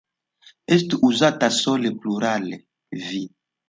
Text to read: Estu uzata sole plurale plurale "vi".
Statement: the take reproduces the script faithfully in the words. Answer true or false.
false